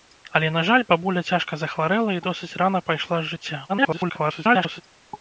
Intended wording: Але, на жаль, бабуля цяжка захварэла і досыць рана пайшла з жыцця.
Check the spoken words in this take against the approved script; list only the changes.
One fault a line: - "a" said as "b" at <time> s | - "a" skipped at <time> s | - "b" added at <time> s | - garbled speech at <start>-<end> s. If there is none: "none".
- garbled speech at 3.7-4.8 s